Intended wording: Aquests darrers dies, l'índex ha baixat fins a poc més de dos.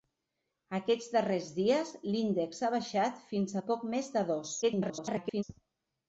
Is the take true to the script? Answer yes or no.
no